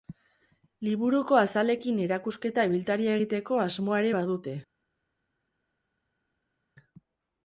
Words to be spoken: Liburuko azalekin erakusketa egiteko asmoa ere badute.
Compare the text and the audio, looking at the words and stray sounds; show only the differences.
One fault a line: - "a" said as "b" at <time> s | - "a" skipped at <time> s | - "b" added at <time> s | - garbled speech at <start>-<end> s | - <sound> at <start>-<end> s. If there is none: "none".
- "ibiltaria" added at 2.7 s